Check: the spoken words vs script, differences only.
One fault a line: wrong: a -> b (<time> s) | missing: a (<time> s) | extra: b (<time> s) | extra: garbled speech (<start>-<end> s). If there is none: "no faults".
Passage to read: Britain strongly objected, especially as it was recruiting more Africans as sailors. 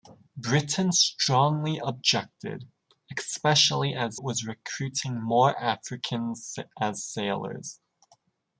missing: it (4.2 s)